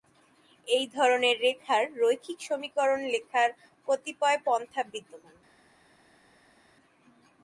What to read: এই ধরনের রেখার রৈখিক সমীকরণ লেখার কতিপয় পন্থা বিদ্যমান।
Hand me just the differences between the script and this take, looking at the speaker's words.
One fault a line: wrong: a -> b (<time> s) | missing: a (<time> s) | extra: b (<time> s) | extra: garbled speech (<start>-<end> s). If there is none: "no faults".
no faults